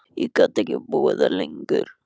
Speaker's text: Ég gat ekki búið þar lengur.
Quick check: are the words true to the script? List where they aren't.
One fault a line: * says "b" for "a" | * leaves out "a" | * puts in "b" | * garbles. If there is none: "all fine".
all fine